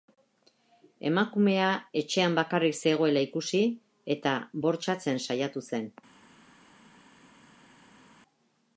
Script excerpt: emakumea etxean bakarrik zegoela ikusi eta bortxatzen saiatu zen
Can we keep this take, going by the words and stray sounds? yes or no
yes